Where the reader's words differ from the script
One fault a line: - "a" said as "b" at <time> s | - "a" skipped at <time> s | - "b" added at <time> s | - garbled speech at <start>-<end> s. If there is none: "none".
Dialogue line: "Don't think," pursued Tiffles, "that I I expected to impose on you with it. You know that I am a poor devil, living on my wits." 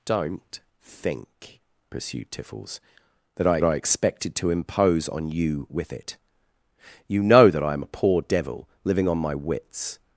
none